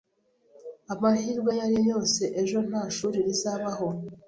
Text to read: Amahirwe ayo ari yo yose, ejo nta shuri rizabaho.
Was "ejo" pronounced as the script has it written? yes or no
yes